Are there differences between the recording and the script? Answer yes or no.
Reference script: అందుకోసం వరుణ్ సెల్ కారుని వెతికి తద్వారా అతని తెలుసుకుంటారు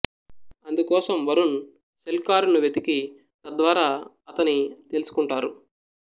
no